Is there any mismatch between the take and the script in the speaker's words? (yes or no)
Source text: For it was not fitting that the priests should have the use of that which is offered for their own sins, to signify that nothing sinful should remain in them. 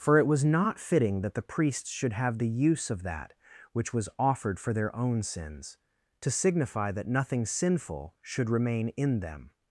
yes